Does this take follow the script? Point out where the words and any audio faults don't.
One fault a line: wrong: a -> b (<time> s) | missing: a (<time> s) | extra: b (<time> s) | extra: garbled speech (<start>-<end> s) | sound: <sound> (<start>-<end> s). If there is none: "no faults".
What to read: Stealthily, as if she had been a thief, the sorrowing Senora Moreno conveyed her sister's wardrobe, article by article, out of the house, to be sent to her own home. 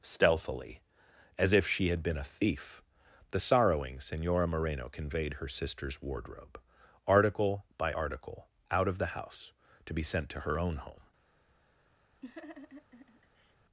sound: laugh (12.2-13.6 s)